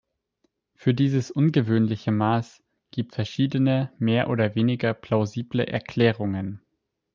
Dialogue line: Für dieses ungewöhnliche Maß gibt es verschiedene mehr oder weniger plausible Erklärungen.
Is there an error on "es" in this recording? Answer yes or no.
yes